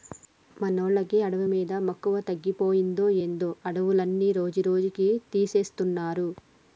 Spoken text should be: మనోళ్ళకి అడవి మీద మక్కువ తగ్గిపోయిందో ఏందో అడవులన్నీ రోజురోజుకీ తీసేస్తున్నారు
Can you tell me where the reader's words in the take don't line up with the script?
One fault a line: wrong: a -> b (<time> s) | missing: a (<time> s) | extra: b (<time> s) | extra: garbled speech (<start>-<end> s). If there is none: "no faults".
no faults